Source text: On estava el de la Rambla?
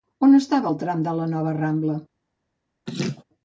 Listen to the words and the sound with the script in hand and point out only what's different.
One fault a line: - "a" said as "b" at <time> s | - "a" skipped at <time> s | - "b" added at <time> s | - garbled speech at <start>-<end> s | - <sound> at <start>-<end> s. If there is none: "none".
- "tram" added at 0.8 s
- "nova" added at 1.3 s
- laugh at 2.9-3.2 s